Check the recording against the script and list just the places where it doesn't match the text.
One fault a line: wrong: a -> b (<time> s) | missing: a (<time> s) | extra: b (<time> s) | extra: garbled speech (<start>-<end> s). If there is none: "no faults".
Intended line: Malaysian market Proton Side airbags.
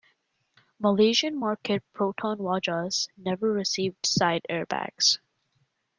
extra: Wajas never received (2.4 s)